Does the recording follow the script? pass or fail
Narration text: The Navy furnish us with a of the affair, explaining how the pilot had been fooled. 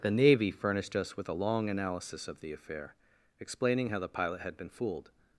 fail